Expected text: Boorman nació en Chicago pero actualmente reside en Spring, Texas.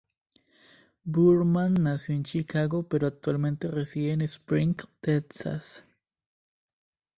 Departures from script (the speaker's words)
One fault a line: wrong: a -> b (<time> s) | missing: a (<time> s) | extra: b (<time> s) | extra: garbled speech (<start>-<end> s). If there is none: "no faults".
no faults